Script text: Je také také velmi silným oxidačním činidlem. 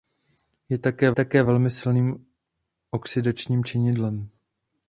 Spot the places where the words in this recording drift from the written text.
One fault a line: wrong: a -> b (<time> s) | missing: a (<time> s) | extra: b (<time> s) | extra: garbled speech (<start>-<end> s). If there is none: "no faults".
no faults